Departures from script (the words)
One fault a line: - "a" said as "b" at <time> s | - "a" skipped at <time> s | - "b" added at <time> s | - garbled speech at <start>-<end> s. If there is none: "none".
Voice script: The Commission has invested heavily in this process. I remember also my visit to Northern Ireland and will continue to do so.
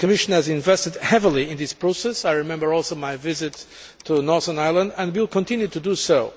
none